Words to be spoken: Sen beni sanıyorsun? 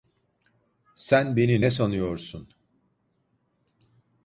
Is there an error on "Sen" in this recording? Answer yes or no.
no